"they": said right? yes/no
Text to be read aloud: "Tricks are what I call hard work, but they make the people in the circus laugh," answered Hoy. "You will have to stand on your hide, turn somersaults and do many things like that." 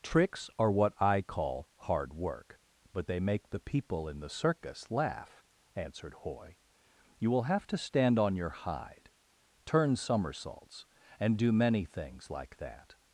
yes